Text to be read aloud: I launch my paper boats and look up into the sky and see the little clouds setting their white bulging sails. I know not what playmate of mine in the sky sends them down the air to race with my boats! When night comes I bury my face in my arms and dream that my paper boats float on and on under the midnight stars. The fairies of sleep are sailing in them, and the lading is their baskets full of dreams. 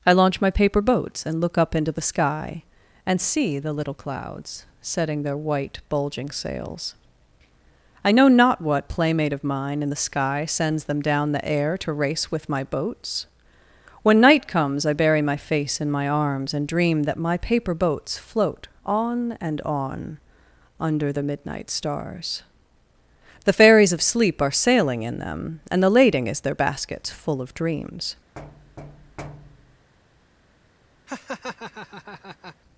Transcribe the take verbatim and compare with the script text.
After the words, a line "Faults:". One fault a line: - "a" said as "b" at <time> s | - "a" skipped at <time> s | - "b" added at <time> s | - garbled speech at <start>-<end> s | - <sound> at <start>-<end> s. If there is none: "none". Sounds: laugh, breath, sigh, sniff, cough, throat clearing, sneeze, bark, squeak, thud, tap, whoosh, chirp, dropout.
I launch my paper boats and look up into the sky and see the little clouds setting their white bulging sails. I know not what playmate of mine in the sky sends them down the air to race with my boats! When night comes I bury my face in my arms and dream that my paper boats float on and on under the midnight stars. The fairies of sleep are sailing in them, and the lading is their baskets full of dreams.
Faults:
- thud at 28.4-29.9 s
- laugh at 31.1-32.6 s